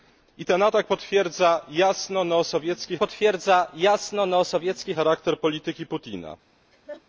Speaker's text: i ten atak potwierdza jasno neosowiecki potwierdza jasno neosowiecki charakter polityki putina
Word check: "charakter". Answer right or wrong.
right